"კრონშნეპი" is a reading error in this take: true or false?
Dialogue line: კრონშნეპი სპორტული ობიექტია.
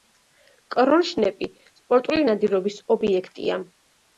false